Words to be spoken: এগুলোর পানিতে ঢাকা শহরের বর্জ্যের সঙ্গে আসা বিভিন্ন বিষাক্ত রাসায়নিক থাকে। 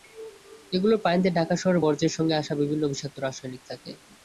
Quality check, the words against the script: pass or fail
pass